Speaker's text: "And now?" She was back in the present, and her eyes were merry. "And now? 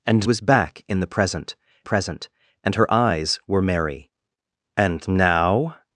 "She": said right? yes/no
no